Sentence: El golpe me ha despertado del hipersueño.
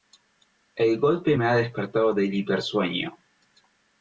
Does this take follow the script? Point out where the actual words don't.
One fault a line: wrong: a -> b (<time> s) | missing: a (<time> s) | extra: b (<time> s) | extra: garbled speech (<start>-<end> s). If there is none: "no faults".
no faults